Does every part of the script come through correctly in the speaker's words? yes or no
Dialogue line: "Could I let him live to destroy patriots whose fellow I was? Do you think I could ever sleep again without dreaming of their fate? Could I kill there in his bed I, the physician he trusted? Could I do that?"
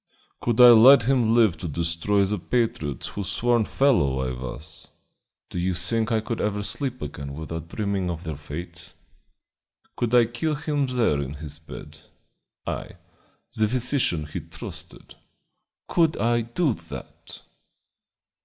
no